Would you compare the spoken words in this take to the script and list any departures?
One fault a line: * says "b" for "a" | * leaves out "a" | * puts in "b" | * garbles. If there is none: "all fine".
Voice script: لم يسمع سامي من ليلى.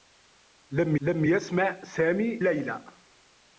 * puts in "لم"
* leaves out "من"